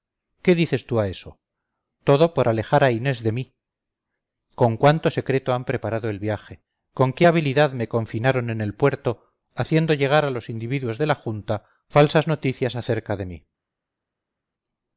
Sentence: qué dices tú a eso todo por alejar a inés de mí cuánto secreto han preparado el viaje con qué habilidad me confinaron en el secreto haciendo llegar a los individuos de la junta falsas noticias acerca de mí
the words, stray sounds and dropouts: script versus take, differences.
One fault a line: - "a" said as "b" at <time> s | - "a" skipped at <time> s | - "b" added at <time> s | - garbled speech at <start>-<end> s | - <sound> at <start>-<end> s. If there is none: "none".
- "con" added at 4.5 s
- "secreto" said as "puerto" at 8.7 s